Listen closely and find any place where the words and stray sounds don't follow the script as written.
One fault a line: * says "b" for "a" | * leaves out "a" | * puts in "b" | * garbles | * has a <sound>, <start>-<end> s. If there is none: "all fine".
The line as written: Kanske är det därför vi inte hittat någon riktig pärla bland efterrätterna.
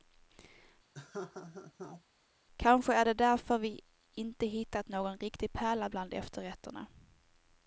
* has a laugh, 0.9-2.0 s